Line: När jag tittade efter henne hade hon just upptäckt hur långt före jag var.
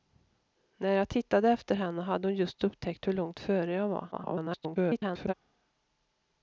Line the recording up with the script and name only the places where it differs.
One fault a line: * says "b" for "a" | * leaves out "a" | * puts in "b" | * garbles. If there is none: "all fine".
* garbles